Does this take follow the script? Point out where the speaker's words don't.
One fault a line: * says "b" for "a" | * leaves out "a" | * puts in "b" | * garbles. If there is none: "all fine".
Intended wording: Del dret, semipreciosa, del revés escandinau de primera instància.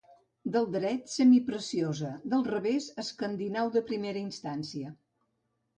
all fine